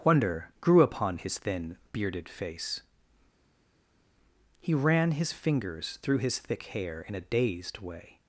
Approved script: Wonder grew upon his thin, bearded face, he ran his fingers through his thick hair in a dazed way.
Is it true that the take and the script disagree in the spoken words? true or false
false